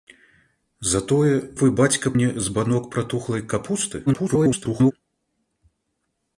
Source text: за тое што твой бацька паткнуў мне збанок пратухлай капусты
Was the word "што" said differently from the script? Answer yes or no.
yes